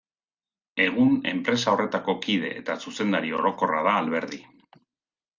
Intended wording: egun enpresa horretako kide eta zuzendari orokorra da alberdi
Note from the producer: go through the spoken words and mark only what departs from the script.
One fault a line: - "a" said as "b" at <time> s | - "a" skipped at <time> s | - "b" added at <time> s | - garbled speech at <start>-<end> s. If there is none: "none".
none